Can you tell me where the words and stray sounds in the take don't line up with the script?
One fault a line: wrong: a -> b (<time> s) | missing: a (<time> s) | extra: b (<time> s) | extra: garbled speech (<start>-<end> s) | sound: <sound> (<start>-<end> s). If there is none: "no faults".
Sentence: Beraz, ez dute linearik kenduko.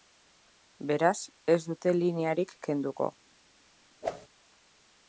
sound: whoosh (4.0-4.3 s)